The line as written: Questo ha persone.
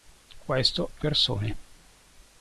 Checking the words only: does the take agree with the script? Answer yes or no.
yes